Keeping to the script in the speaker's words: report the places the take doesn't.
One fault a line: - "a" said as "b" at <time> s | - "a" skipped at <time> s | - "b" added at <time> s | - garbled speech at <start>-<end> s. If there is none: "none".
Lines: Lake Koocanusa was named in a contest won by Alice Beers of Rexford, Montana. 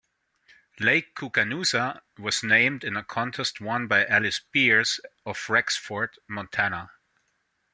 none